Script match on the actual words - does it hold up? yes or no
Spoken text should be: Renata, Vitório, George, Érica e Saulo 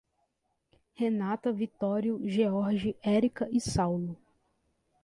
yes